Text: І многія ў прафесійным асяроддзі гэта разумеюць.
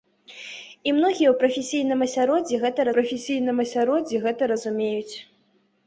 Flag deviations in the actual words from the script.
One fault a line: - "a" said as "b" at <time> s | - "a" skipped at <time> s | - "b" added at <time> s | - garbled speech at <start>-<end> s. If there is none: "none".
- "прафесійным асяроддзі гэта" added at 3.0 s